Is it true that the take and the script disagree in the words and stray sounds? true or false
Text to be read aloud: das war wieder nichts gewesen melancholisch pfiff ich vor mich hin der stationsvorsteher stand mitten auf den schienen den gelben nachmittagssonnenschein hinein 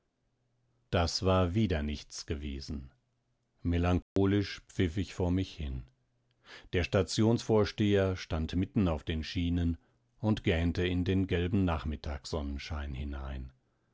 true